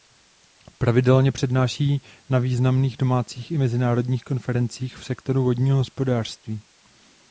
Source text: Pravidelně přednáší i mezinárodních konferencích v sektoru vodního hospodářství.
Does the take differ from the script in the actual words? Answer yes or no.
yes